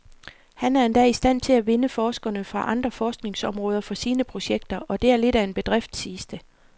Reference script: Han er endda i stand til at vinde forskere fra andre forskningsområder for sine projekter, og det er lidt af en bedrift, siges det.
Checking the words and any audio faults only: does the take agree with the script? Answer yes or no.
yes